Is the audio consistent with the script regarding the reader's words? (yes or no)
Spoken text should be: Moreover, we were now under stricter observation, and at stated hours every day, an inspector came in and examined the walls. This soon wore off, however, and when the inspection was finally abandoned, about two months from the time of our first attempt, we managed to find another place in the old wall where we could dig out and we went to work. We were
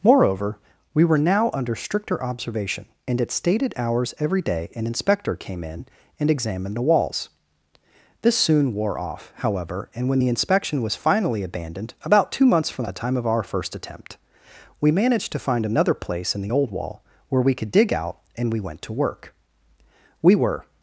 yes